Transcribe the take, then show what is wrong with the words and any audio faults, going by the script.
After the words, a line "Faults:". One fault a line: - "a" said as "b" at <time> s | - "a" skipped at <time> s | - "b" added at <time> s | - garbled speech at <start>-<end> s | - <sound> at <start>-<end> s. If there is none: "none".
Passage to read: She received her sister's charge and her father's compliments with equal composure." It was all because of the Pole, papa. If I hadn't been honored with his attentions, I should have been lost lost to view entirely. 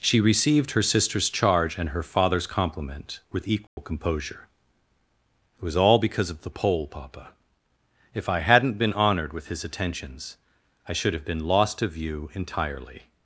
She received her sister's charge and her father's compliment with equal composure." It was all because of the Pole, papa. If I hadn't been honored with his attentions, I should have been lost to view entirely.
Faults:
- "compliments" said as "compliment" at 2.5 s
- dropout at 3.7-3.8 s
- "lost" skipped at 11.8 s